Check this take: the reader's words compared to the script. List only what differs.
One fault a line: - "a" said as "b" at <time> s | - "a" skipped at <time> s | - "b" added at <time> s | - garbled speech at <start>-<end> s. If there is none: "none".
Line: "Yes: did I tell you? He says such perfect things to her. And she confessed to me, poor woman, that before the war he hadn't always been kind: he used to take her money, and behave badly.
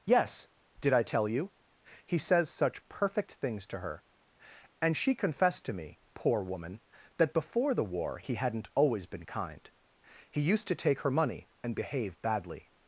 none